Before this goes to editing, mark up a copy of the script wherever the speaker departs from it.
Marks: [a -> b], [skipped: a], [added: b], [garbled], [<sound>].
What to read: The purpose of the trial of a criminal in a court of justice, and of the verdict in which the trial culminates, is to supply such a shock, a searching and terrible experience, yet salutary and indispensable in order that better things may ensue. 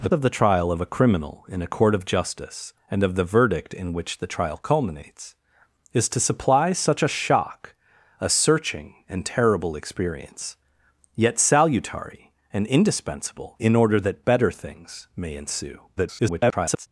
The [skipped: purpose] of the trial of a criminal in a court of justice, and of the verdict in which the trial culminates, is to supply such a shock, a searching and terrible experience, yet salutary and indispensable in order that better things may ensue. [garbled]